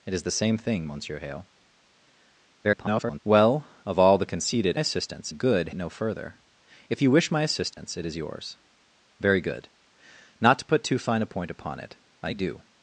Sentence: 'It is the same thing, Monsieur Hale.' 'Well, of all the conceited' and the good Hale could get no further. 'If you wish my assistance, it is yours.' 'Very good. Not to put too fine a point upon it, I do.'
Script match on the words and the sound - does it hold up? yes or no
no